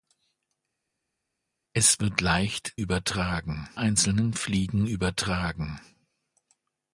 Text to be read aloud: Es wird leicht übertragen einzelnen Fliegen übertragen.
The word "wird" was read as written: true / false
true